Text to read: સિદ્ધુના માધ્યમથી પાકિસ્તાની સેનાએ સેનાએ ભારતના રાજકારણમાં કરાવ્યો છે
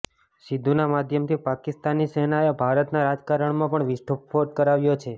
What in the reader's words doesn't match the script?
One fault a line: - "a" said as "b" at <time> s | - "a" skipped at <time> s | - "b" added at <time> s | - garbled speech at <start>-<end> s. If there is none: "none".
- "સેનાએ" skipped at 2.6 s
- "પણ વિસ્ફોટ" added at 3.8 s